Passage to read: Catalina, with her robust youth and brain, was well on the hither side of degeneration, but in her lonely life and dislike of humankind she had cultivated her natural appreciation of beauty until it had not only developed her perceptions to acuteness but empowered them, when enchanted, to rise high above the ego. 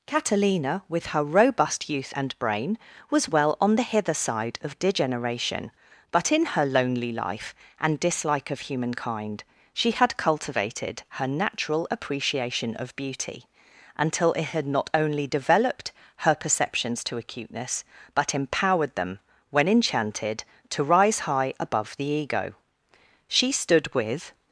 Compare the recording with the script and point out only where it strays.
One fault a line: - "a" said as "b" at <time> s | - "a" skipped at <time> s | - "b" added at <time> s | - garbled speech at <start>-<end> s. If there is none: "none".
- "She stood with" added at 23.3 s